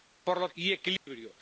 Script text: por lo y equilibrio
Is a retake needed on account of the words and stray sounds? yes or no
yes